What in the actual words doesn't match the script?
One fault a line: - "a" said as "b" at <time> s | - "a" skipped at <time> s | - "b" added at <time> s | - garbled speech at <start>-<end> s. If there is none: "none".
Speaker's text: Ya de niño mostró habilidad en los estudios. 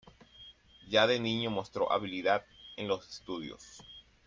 none